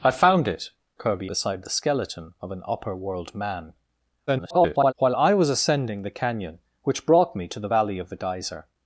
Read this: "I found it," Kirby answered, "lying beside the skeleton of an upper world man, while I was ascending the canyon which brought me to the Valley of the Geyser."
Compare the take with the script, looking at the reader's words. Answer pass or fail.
fail